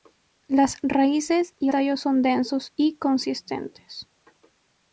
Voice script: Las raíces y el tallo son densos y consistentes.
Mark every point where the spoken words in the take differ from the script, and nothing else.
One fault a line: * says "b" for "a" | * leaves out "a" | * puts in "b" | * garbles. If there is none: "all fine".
* leaves out "el"